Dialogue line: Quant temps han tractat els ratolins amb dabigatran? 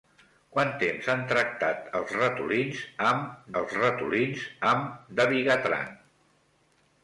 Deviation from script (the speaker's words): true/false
true